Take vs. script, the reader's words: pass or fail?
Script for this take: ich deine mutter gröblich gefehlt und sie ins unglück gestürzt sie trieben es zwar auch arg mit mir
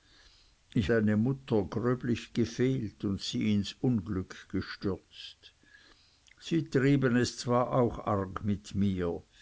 pass